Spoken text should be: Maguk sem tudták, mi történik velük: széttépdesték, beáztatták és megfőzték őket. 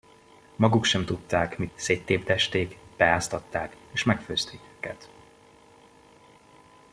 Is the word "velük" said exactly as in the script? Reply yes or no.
no